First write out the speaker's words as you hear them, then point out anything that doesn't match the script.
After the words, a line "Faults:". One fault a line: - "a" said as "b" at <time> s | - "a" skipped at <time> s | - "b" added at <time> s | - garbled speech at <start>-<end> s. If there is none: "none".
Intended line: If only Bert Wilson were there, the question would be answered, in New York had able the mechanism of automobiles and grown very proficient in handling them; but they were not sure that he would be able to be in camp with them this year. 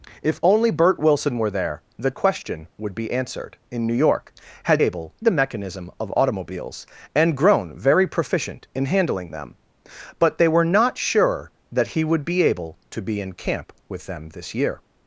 If only Bert Wilson were there, the question would be answered, in New York had able the mechanism of automobiles and grown very proficient in handling them; but they were not sure that he would be able to be in camp with them this year.
Faults:
none